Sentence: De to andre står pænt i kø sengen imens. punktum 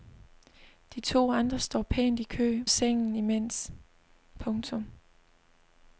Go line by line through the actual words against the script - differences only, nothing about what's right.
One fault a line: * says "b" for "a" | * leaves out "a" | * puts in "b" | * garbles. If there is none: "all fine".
all fine